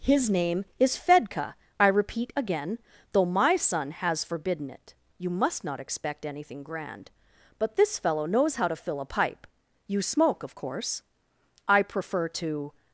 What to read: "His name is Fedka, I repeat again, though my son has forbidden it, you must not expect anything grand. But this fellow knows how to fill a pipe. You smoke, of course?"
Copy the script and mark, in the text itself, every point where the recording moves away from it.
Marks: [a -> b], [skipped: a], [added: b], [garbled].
"His name is Fedka, I repeat again, though my son has forbidden it, you must not expect anything grand. But this fellow knows how to fill a pipe. You smoke, of course?" [added: I prefer to]